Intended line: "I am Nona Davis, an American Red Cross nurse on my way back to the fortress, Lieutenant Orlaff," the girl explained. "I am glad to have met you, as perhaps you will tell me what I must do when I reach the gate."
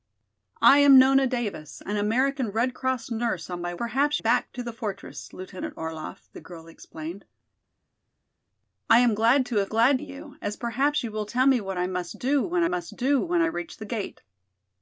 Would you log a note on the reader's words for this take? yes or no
yes